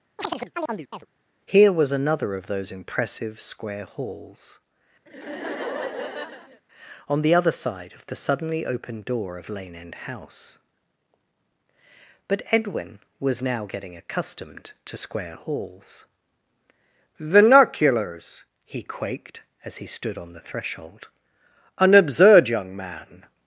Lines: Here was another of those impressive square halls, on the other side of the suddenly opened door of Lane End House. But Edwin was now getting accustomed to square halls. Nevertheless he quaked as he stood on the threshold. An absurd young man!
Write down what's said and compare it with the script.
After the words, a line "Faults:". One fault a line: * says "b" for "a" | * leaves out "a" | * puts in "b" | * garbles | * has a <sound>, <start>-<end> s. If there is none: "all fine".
Here was another of those impressive square halls, on the other side of the suddenly opened door of Lane End House. But Edwin was now getting accustomed to square halls. Vernaculars he quaked as he stood on the threshold. An absurd young man!
Faults:
* has a chirp, 0.2-1.1 s
* has a laugh, 5.1-6.6 s
* says "Vernaculars" for "Nevertheless"